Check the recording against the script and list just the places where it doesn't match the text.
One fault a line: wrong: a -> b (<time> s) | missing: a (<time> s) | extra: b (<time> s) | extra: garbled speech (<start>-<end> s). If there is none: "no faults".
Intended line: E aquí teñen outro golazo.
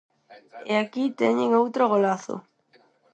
no faults